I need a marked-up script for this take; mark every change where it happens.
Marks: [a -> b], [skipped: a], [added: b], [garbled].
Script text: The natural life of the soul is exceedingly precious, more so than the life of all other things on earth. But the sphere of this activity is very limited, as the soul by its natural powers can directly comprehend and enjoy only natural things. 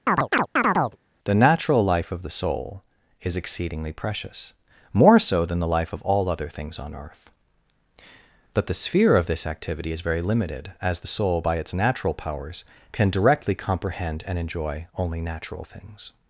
The natural life of the soul is exceedingly precious, more so than the life of all other things on earth. But the sphere of this activity is very limited, as the soul by its natural powers can directly comprehend and enjoy only natural things.